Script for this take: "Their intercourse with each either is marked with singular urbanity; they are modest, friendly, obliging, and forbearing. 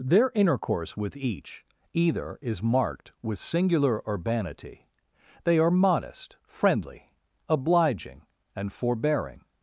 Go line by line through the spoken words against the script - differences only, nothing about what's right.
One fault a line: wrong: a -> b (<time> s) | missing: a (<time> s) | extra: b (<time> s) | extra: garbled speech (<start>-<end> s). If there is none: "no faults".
no faults